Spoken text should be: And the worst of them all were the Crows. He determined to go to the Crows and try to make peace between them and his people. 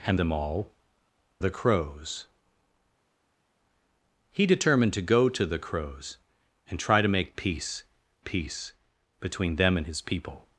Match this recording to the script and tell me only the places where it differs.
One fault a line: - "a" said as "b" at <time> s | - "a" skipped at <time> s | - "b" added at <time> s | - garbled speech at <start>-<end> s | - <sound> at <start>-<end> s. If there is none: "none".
- "the worst of" skipped at 0.2 s
- "were" skipped at 0.7 s
- "peace" added at 8.2 s